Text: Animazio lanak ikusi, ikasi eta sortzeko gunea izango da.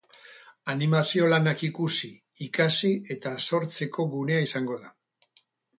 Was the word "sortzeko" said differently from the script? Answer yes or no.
no